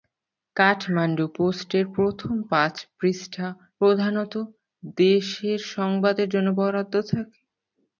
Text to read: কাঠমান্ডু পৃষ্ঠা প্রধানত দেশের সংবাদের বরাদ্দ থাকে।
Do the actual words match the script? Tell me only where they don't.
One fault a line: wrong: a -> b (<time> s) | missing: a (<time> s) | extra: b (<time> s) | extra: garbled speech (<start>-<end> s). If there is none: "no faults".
extra: পোস্টের প্রথম পাঁচ (1.4 s)
extra: জন্য (6.3 s)